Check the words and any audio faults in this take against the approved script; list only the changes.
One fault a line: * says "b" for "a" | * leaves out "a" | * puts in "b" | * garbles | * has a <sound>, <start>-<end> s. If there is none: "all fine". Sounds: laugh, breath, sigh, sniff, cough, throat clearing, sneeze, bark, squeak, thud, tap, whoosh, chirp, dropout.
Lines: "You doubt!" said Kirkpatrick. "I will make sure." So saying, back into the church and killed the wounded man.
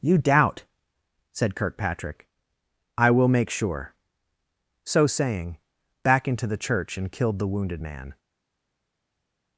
all fine